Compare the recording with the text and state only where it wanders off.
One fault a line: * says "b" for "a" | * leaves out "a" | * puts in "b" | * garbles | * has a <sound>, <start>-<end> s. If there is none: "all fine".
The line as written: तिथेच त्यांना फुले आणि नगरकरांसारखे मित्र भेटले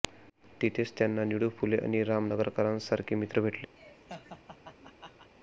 * puts in "निळू"
* puts in "राम"
* has a laugh, 3.8-5.3 s